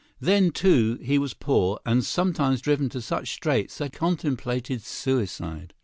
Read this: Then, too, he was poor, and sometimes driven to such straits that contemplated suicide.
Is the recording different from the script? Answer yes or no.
no